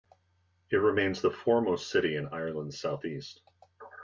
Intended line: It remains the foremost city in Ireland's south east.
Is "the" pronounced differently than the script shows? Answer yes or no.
no